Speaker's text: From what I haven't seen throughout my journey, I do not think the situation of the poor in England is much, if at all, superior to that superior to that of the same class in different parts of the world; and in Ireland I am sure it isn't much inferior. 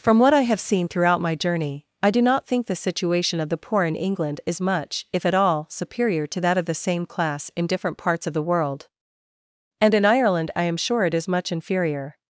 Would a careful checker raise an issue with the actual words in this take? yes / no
yes